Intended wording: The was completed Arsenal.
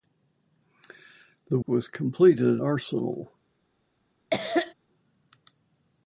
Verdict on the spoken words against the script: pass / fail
pass